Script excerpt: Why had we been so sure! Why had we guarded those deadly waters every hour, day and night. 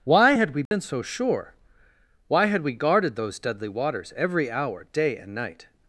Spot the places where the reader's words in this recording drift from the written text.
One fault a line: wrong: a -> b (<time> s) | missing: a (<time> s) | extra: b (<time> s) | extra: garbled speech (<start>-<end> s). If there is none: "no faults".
no faults